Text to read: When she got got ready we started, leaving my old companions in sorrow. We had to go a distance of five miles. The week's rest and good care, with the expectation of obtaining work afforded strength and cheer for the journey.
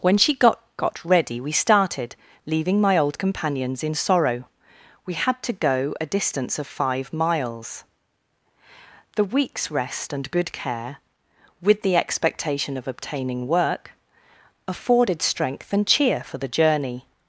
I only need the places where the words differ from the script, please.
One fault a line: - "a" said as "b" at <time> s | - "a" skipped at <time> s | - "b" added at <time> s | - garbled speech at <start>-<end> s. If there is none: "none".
none